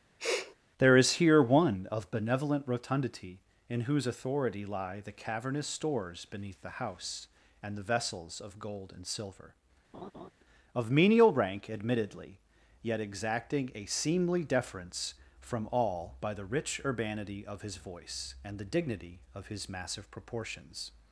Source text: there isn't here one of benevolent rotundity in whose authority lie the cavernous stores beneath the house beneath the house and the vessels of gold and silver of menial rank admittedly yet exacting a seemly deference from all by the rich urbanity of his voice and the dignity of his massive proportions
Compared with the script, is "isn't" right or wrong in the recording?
wrong